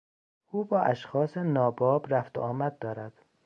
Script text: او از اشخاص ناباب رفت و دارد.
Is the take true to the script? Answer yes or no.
no